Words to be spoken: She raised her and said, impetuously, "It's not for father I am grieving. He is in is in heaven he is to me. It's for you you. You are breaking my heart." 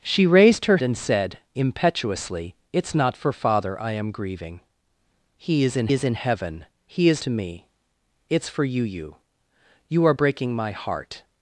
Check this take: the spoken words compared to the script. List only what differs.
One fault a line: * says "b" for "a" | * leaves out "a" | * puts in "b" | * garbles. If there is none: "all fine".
all fine